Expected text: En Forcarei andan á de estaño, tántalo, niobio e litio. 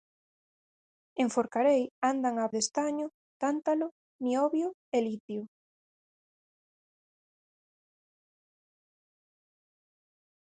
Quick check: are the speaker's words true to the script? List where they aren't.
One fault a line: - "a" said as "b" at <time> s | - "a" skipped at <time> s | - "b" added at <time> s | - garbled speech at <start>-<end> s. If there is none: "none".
none